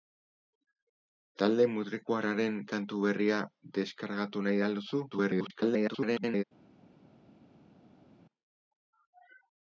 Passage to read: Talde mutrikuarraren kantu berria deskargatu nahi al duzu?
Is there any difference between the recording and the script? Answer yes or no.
yes